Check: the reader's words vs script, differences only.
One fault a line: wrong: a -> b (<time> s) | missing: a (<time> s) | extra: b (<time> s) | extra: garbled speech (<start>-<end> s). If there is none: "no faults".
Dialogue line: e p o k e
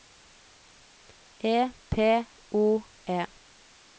missing: k (2.8 s)